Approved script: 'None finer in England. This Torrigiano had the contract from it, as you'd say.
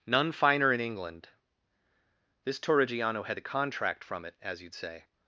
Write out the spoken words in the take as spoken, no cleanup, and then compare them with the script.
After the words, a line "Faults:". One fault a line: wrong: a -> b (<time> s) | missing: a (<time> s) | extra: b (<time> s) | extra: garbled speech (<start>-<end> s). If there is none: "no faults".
'None finer in England. This Torrigiano had the contract from it, as you'd say.
Faults:
no faults